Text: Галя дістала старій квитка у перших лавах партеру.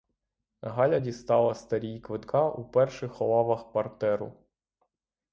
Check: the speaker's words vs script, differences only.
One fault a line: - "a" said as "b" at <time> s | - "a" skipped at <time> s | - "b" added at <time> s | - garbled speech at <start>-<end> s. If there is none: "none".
none